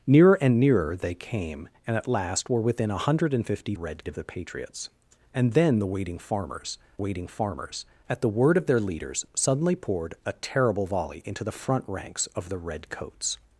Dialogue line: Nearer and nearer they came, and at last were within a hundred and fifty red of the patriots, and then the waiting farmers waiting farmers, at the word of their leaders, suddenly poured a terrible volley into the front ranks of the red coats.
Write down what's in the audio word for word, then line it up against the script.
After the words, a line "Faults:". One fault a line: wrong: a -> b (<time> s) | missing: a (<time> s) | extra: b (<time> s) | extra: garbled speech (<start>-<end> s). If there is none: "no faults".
Nearer and nearer they came, and at last were within a hundred and fifty red of the patriots, and then the waiting farmers waiting farmers, at the word of their leaders, suddenly poured a terrible volley into the front ranks of the red coats.
Faults:
no faults